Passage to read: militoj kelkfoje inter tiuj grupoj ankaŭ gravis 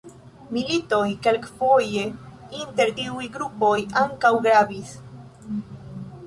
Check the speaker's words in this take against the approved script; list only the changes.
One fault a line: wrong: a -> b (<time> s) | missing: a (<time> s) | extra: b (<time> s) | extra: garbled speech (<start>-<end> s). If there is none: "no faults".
no faults